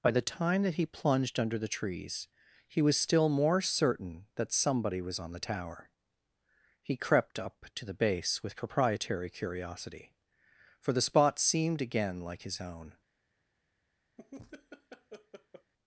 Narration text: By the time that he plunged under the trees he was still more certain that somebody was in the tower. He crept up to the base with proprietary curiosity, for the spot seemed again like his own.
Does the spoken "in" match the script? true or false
false